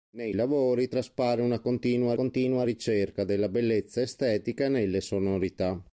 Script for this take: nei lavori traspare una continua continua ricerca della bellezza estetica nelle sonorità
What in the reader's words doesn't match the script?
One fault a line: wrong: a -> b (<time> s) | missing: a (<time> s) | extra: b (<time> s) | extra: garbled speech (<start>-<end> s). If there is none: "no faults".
no faults